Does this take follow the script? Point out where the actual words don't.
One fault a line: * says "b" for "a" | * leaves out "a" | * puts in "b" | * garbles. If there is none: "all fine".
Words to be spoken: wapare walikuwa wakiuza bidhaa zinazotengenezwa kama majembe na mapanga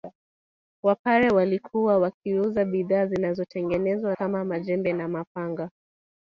all fine